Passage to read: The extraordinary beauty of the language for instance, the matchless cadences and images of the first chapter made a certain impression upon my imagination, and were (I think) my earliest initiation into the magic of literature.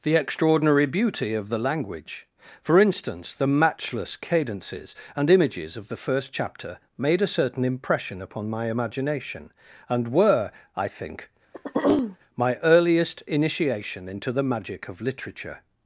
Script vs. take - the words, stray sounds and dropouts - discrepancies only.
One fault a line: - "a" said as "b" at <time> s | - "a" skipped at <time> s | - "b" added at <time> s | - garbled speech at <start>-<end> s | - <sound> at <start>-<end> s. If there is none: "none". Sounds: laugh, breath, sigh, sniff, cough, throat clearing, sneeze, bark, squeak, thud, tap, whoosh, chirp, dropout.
- throat clearing at 11.5-12.2 s